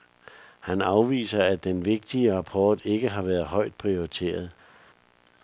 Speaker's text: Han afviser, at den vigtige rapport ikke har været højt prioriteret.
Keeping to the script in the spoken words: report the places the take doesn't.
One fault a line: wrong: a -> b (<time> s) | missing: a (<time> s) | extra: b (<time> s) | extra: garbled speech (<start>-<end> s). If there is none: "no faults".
no faults